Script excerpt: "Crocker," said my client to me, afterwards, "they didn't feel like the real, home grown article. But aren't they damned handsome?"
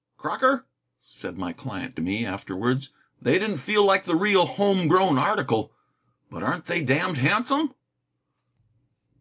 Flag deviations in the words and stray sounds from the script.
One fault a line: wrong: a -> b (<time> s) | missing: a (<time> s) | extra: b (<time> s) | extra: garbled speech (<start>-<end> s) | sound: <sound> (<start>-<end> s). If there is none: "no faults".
no faults